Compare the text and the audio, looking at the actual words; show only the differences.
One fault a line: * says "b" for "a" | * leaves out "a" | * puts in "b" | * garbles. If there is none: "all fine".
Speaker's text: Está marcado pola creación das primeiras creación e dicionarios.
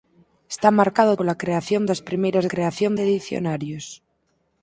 all fine